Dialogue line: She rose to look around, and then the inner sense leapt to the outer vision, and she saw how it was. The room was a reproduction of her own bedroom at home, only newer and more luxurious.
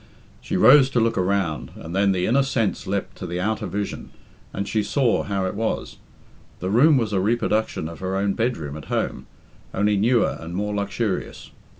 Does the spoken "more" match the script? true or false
true